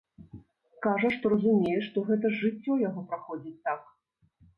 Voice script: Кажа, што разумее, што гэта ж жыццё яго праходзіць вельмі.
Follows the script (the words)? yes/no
no